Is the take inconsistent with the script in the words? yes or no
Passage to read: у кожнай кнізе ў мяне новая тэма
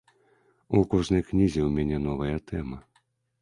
no